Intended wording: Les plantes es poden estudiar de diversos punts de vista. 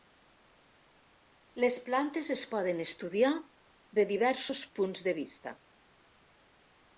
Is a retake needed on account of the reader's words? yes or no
no